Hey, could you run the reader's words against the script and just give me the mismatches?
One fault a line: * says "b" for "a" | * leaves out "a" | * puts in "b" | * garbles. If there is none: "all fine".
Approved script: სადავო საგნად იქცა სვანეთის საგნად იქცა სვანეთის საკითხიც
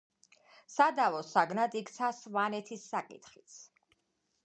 * leaves out "საგნად იქცა სვანეთის"